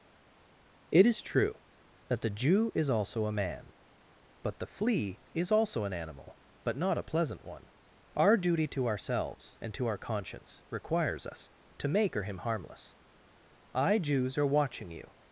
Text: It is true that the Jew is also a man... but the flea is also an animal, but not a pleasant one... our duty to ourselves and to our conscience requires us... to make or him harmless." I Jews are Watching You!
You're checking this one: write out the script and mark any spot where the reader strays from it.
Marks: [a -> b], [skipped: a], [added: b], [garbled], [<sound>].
It is true that the Jew is also a man... but the flea is also an animal, but not a pleasant one... our duty to ourselves and to our conscience requires us... to make or him harmless." I Jews are Watching You!